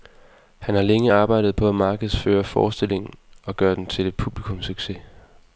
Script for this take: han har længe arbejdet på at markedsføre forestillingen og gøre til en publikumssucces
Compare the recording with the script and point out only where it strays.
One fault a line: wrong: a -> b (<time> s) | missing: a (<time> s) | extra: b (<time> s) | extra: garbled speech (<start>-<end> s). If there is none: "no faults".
extra: den (3.8 s)